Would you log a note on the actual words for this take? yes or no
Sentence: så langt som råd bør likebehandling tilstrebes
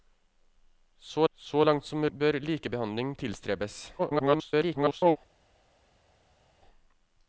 yes